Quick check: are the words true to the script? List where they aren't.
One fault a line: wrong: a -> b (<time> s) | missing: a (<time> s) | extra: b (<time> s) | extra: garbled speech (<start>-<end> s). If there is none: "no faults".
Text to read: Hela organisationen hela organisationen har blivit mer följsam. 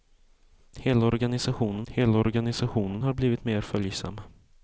no faults